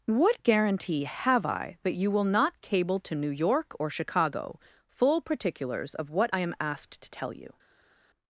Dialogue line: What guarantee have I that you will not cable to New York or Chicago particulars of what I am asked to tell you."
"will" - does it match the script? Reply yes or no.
yes